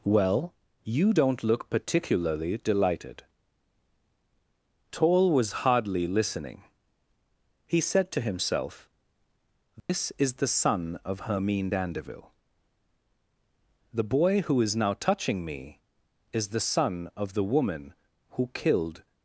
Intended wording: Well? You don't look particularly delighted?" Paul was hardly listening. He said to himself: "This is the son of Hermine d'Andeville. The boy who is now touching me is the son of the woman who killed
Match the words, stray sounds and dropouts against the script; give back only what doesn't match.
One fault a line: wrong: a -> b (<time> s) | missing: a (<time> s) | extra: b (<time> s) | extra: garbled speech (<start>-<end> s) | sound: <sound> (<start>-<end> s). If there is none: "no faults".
wrong: Paul -> Toll (4.9 s)
sound: dropout (9.8-9.9 s)